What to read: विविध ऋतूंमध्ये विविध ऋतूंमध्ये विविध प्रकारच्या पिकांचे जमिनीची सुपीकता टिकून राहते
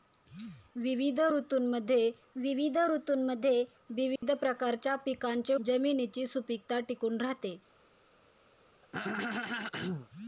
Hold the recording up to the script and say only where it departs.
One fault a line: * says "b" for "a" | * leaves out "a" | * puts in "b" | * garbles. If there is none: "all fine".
all fine